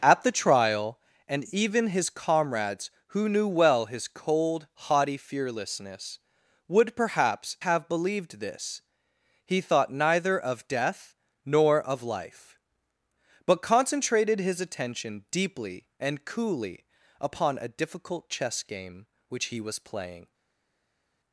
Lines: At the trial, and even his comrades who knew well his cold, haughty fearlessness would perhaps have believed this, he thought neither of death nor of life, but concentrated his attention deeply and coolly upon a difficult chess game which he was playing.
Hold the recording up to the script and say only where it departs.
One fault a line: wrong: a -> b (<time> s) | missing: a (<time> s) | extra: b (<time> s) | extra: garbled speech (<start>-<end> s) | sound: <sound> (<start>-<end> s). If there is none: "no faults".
no faults